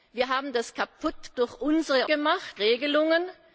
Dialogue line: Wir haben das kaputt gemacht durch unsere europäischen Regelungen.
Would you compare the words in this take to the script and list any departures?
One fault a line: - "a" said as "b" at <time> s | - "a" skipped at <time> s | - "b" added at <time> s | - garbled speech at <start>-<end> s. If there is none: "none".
- "gemacht" skipped at 1.4 s
- "europäischen" said as "gemacht" at 2.1 s